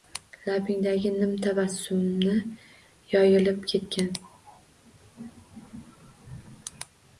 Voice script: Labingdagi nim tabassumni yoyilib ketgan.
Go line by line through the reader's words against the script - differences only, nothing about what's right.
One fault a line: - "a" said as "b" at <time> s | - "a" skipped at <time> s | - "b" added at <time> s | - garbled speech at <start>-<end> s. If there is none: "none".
none